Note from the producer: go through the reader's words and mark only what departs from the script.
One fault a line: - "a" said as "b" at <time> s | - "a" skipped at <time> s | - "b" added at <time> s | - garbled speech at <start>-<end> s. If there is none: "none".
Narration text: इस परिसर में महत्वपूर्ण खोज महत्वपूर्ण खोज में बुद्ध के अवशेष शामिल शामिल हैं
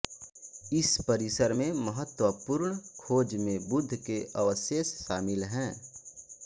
- "महत्वपूर्ण खोज" skipped at 3.4 s
- "शामिल" skipped at 5.4 s